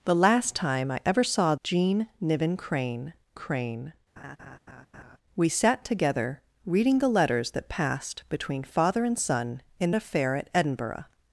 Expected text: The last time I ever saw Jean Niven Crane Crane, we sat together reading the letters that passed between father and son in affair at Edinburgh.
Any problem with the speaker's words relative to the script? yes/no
no